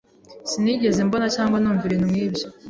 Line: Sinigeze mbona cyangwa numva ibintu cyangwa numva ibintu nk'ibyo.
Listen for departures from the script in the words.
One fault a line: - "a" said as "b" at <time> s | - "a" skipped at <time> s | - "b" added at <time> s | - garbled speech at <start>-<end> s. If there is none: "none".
- "cyangwa numva ibintu" skipped at 2.1 s